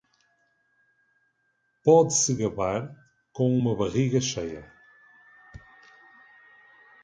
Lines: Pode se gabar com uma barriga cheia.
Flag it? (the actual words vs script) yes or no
no